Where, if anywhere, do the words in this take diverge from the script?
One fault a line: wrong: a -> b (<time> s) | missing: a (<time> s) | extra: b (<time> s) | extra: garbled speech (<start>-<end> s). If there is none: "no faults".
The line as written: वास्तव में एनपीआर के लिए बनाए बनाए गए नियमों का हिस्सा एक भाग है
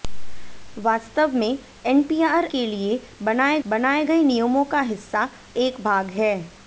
no faults